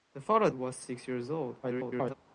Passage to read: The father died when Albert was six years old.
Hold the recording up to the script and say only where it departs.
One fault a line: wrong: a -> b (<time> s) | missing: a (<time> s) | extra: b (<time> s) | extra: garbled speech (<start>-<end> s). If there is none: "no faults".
missing: died when Albert (0.5 s)
extra: garbled speech (1.6-2.1 s)